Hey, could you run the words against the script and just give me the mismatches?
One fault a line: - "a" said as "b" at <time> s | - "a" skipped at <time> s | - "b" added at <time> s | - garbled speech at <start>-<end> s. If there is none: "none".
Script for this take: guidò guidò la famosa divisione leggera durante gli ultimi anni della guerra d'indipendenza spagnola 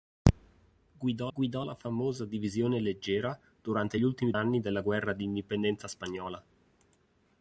none